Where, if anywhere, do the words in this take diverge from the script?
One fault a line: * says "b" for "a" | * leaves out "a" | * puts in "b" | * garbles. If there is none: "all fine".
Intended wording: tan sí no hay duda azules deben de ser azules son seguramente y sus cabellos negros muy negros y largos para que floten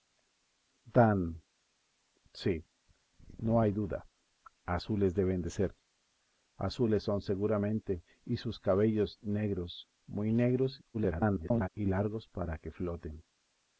* garbles